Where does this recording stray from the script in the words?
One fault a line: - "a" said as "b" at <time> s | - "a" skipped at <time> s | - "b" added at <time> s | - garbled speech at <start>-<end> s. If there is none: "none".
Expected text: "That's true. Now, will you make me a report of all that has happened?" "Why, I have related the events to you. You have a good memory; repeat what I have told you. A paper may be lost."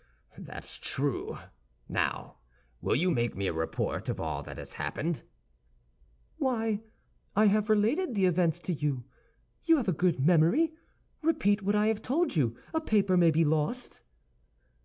none